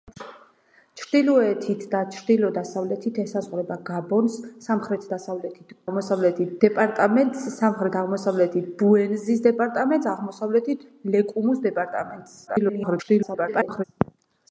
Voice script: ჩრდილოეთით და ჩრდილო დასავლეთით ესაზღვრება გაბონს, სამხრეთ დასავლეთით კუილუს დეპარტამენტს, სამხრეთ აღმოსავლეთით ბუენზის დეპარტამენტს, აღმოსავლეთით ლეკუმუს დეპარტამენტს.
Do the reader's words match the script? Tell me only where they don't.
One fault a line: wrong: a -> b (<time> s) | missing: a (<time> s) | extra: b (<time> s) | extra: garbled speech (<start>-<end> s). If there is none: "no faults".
wrong: კუილუს -> აღმოსავლეთით (5.9 s)
extra: garbled speech (12.5-13.8 s)